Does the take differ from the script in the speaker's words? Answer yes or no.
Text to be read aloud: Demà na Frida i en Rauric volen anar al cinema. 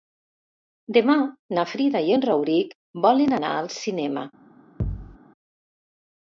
no